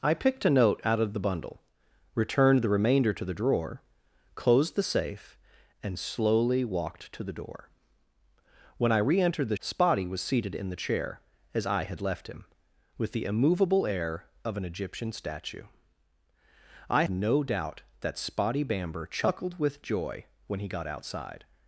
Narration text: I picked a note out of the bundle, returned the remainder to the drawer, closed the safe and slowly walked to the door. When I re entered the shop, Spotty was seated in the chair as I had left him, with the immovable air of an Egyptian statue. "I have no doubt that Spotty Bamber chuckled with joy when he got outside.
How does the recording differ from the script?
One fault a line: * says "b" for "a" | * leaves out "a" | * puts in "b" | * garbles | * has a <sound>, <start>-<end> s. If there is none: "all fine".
* leaves out "shop"
* leaves out "have"